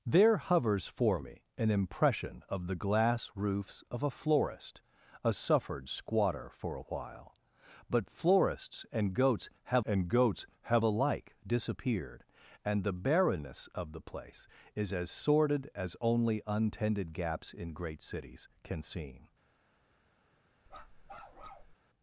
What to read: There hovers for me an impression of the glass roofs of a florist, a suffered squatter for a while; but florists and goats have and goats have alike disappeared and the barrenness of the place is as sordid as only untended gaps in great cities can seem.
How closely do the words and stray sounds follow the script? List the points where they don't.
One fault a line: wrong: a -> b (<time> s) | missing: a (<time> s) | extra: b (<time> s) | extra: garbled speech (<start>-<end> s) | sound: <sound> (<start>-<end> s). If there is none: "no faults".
sound: bark (20.7-21.8 s)